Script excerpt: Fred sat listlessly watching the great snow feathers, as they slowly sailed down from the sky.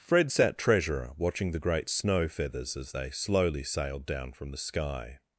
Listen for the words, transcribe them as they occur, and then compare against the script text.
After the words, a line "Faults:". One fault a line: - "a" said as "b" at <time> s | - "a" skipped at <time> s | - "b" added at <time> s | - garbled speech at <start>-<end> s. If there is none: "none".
Fred sat treasurer watching the great snow feathers, as they slowly sailed down from the sky.
Faults:
- "listlessly" said as "treasurer" at 0.6 s